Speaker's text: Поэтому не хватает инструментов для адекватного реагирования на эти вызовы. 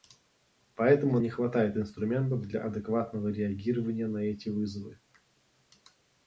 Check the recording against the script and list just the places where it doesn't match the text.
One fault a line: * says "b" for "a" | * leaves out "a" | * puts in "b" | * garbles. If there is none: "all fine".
all fine